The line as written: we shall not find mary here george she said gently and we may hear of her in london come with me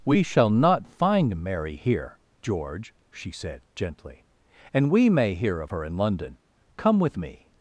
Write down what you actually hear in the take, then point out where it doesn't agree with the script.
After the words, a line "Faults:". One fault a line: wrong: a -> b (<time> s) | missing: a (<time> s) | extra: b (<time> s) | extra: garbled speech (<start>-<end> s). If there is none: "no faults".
we shall not find mary here george she said gently and we may hear of her in london come with me
Faults:
no faults